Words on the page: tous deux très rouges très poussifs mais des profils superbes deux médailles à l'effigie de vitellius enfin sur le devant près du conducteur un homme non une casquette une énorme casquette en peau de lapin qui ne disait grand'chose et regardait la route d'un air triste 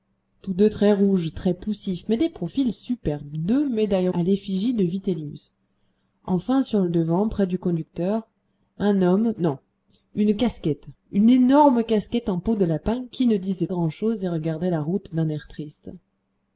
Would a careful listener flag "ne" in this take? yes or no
no